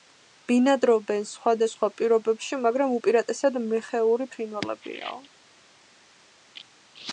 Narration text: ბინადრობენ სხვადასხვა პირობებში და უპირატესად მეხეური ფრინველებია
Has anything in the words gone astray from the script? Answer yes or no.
yes